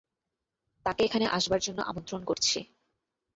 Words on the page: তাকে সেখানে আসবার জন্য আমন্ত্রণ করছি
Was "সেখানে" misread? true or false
true